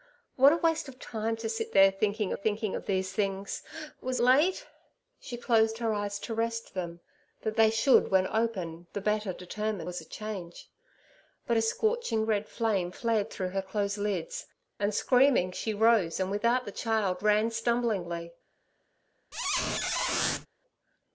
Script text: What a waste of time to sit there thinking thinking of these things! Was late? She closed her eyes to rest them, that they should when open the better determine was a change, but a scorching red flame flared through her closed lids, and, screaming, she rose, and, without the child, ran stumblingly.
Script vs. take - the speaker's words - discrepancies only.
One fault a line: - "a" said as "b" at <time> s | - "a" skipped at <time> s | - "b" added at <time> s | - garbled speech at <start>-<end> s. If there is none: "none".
none